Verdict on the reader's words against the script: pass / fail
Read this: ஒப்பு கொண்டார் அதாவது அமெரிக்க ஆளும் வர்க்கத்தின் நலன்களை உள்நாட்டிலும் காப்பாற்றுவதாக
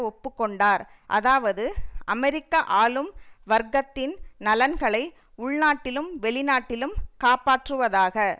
fail